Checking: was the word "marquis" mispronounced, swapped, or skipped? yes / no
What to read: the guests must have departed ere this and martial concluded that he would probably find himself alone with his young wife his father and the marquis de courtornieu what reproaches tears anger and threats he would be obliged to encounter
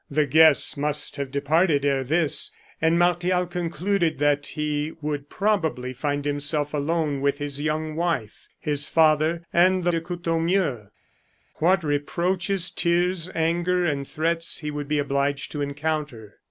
yes